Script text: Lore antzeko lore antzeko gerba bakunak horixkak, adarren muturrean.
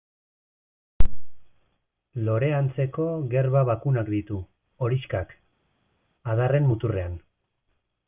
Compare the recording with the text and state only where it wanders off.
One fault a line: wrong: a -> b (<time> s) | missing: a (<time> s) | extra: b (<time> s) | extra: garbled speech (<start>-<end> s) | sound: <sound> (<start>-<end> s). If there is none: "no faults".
missing: lore antzeko (3.0 s)
extra: ditu (4.1 s)